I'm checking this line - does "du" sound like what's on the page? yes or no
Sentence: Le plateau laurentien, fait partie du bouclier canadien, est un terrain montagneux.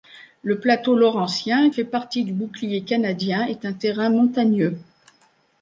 yes